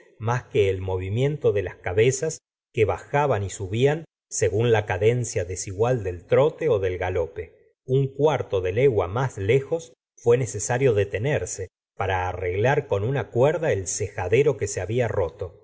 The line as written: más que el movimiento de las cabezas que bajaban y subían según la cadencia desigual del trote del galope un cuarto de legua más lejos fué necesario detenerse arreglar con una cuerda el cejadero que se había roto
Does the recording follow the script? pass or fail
fail